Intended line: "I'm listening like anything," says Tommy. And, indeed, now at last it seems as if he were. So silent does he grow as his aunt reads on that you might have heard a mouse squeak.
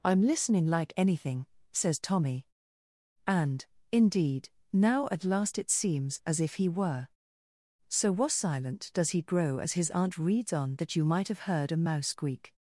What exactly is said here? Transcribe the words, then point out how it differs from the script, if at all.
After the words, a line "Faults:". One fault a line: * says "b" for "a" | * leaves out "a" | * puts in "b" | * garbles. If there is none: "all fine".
"I'm listening like anything," says Tommy. And, indeed, now at last it seems as if he were. So was silent does he grow as his aunt reads on that you might have heard a mouse squeak.
Faults:
* puts in "was"